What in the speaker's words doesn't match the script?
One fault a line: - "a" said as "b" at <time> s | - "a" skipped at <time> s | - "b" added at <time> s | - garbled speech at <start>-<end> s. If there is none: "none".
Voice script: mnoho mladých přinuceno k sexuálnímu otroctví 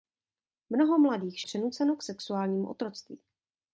none